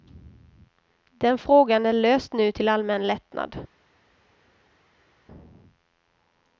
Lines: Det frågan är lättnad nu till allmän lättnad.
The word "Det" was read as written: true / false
false